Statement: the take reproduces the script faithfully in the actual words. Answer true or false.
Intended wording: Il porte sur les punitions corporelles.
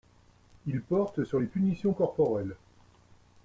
true